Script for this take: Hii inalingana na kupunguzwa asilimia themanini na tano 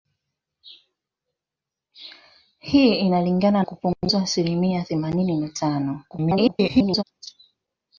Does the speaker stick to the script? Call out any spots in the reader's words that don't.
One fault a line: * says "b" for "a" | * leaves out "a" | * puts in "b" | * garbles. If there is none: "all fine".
* leaves out "na"
* garbles